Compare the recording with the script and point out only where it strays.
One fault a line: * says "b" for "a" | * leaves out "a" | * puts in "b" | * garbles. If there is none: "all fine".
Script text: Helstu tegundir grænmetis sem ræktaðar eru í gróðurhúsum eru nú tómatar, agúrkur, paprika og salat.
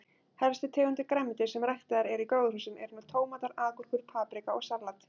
all fine